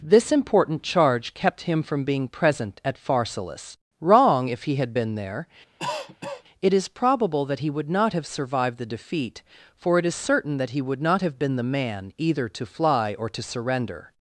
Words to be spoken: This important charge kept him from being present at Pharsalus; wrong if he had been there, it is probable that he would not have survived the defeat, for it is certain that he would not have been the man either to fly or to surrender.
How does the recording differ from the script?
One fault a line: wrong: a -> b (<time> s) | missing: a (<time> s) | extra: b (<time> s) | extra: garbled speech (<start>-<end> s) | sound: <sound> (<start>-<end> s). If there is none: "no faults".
sound: cough (5.8-6.4 s)